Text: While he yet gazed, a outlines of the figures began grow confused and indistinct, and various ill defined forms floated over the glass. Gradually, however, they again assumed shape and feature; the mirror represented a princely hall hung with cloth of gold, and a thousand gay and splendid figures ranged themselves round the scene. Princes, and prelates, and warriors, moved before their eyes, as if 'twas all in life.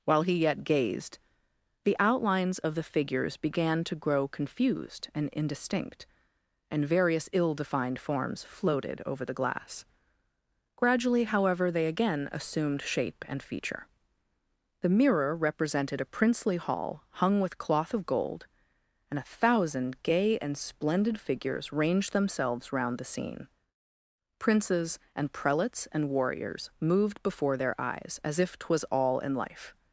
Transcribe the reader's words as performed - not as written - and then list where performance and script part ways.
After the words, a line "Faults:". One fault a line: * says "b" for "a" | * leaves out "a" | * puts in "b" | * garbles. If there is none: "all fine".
While he yet gazed, the outlines of the figures began to grow confused and indistinct, and various ill defined forms floated over the glass. Gradually, however, they again assumed shape and feature; the mirror represented a princely hall hung with cloth of gold, and a thousand gay and splendid figures ranged themselves round the scene. Princes, and prelates, and warriors, moved before their eyes, as if 'twas all in life.
Faults:
* says "the" for "a"
* puts in "to"